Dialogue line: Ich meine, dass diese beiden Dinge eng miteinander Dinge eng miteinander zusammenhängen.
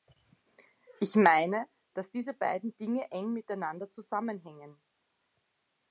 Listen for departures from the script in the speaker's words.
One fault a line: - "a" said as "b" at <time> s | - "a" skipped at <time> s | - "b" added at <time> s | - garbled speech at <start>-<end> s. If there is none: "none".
- "Dinge eng miteinander" skipped at 3.9 s